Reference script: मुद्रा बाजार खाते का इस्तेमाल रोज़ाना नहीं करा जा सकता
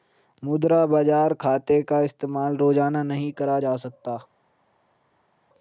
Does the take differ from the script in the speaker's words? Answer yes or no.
no